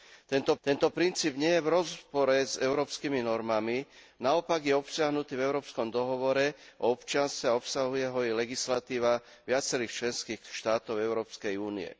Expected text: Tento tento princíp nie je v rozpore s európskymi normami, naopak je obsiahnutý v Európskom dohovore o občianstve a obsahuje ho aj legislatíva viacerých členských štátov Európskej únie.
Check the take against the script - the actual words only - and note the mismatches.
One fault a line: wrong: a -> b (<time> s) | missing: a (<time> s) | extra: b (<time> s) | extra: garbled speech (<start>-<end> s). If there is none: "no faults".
no faults